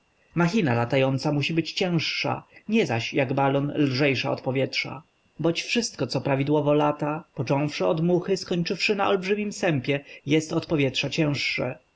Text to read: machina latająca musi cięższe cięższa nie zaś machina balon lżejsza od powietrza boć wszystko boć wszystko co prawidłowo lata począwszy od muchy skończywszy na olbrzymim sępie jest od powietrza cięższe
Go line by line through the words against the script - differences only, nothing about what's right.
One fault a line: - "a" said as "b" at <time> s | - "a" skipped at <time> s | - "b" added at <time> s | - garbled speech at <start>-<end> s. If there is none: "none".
- "cięższe" said as "być" at 1.5 s
- "machina" said as "jak" at 3.1 s
- "boć wszystko" skipped at 6.1 s